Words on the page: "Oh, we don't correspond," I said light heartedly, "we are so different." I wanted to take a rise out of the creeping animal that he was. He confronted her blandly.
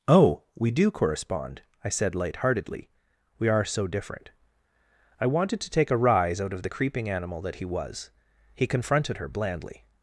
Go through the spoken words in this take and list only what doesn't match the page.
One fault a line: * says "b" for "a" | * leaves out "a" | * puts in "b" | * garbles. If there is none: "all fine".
* says "do" for "don't"